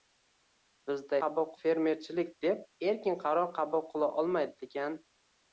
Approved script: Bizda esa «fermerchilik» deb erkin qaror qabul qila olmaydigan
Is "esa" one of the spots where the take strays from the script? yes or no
yes